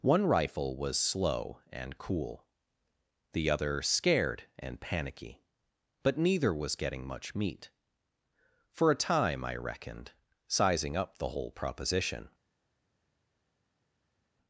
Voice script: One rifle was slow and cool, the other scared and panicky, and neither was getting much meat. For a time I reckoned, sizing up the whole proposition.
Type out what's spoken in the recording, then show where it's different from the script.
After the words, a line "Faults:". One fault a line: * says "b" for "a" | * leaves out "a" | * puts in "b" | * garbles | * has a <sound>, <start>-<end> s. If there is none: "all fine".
One rifle was slow and cool, the other scared and panicky, but neither was getting much meat. For a time I reckoned, sizing up the whole proposition.
Faults:
* says "but" for "and"